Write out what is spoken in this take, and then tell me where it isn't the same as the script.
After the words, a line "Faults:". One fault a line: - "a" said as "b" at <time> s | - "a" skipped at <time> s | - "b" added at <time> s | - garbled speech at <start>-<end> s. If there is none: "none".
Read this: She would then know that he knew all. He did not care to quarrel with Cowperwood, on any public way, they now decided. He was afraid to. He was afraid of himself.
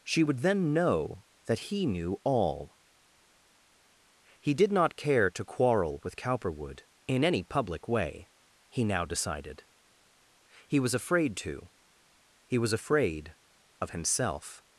She would then know that he knew all. He did not care to quarrel with Cowperwood, in any public way, he now decided. He was afraid to. He was afraid of himself.
Faults:
- "on" said as "in" at 7.1 s
- "they" said as "he" at 8.7 s